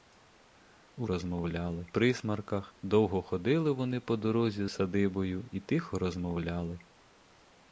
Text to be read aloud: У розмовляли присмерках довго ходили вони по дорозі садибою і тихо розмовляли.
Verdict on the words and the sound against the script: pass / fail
pass